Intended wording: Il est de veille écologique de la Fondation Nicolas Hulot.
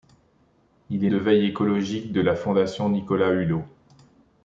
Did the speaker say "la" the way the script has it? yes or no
yes